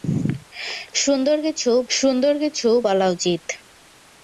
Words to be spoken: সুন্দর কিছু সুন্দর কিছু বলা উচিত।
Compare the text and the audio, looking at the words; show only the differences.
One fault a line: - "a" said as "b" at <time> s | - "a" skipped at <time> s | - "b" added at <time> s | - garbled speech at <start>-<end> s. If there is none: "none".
none